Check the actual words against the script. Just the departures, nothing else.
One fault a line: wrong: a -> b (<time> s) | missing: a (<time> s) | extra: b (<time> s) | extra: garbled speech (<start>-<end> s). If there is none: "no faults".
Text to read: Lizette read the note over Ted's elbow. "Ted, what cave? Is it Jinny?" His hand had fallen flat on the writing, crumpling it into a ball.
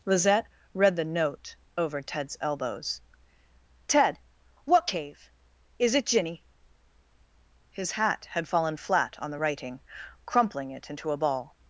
wrong: elbow -> elbows (2.4 s)
wrong: hand -> hat (7.9 s)